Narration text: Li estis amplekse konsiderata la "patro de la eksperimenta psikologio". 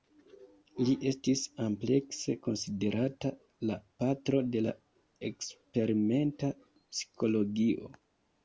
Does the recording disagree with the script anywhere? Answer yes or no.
no